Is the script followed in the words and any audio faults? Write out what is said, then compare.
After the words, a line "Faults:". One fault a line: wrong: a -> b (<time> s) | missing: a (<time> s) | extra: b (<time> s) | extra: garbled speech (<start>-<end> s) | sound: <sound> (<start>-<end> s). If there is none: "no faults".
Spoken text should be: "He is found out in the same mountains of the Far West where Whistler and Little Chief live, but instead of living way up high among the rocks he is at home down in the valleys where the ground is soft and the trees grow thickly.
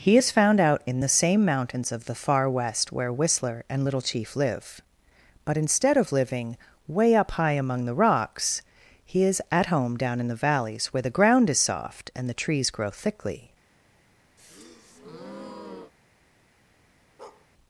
"He is found out in the same mountains of the Far West where Whistler and Little Chief live, but instead of living way up high among the rocks he is at home down in the valleys where the ground is soft and the trees grow thickly.
Faults:
sound: breath (14.4-15.9 s)
sound: bark (17.2-17.5 s)